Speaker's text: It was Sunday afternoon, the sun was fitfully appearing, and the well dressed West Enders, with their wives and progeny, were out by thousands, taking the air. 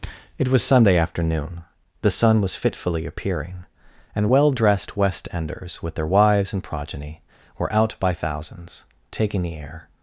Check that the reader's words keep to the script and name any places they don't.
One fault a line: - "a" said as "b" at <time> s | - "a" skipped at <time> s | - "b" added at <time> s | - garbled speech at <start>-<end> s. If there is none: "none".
- "the" skipped at 4.3 s